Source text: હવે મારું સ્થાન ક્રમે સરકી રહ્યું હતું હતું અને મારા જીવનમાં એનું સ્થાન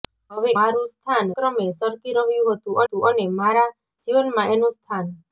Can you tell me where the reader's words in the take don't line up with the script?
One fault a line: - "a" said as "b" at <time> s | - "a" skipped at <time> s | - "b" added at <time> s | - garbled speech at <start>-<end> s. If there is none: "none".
none